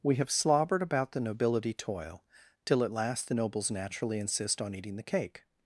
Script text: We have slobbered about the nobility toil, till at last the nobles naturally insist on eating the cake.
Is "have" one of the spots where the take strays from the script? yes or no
no